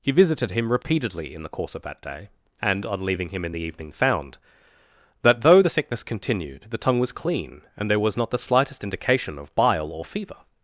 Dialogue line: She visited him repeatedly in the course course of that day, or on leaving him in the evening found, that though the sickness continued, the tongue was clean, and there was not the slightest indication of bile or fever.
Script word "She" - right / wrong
wrong